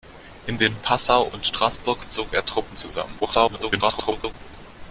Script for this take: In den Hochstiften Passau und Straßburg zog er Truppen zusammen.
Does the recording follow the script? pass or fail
fail